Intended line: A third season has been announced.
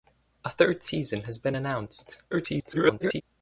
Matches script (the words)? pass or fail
fail